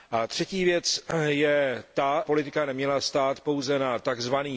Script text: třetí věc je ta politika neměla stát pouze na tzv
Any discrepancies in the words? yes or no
no